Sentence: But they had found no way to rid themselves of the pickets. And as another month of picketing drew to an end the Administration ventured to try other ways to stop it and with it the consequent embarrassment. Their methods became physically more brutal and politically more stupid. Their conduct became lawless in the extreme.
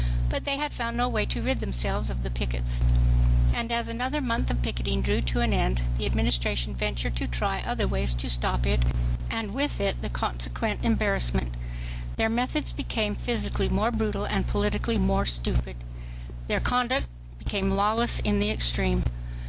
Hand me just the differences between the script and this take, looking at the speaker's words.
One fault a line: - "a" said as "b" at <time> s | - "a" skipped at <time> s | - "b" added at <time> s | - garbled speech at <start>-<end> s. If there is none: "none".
none